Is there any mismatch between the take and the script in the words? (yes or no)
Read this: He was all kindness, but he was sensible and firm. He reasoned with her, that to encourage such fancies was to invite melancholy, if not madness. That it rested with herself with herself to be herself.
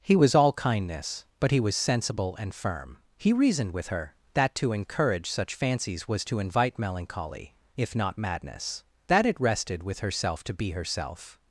yes